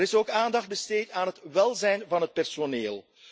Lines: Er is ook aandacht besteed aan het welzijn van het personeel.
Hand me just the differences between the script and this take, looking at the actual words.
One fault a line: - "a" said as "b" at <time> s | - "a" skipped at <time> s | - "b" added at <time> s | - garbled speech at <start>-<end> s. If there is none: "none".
none